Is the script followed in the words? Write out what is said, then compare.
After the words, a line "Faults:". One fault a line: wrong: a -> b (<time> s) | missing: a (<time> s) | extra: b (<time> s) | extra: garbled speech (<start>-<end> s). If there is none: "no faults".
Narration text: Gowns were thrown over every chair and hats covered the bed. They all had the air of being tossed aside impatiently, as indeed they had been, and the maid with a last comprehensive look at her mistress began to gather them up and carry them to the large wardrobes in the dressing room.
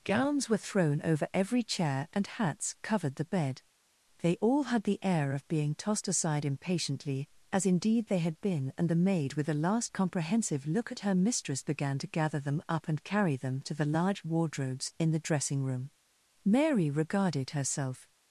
Gowns were thrown over every chair and hats covered the bed. They all had the air of being tossed aside impatiently, as indeed they had been, and the maid with a last comprehensive look at her mistress began to gather them up and carry them to the large wardrobes in the dressing room. Mary regarded herself
Faults:
extra: Mary regarded herself (16.4 s)